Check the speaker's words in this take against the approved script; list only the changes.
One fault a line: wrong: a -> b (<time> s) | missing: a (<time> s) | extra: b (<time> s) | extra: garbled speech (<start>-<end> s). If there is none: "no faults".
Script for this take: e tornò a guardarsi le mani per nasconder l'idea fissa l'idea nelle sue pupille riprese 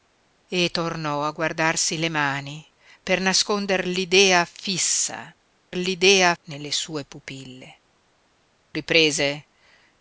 no faults